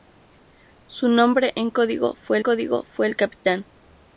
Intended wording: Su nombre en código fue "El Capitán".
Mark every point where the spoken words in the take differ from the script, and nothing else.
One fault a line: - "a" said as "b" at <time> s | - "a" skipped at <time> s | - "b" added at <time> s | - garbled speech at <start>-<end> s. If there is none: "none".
- "código fue" added at 2.4 s